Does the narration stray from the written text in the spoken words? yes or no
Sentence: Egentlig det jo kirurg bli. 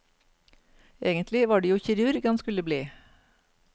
yes